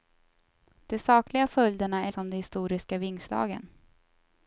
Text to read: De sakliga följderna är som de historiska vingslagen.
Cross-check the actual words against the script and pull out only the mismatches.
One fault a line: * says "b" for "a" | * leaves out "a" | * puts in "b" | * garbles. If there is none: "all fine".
all fine